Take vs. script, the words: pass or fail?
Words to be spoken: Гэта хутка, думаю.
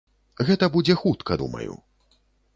fail